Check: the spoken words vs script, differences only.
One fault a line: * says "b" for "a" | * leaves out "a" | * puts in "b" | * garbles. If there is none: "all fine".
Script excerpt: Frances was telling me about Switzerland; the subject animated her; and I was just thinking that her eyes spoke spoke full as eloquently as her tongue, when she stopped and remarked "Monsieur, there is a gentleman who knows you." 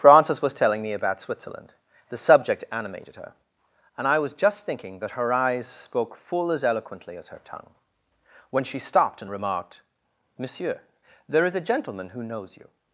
* leaves out "spoke"